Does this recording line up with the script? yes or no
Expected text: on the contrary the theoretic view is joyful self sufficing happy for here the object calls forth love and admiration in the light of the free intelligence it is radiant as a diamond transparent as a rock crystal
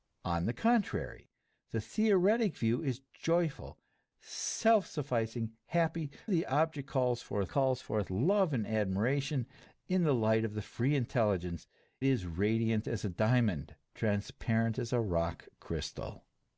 no